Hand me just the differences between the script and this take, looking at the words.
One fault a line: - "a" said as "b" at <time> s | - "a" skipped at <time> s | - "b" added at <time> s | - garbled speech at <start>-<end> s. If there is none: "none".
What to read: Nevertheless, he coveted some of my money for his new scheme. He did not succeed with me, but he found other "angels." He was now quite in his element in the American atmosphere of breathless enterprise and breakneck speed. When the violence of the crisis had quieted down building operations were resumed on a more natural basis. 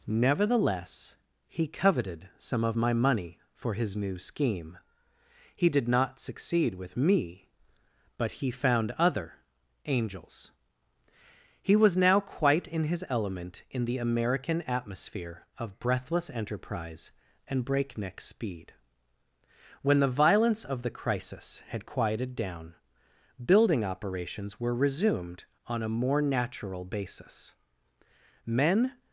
- "Men" added at 28.5 s